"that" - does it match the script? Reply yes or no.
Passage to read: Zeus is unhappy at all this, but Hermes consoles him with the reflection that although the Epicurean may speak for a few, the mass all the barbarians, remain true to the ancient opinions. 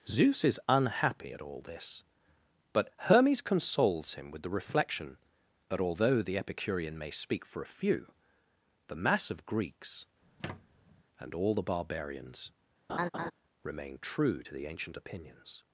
yes